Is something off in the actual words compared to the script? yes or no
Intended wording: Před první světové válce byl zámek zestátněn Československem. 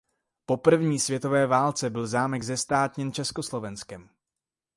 yes